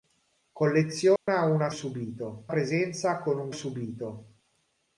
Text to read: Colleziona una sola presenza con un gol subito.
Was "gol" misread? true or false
true